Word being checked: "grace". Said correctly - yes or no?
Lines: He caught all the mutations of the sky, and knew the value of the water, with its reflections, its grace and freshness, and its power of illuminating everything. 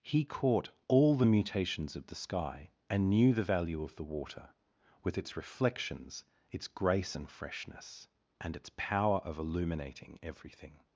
yes